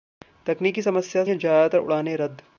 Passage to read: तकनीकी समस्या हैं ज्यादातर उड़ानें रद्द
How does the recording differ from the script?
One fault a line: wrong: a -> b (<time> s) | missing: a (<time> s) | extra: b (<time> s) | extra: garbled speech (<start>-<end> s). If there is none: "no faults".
no faults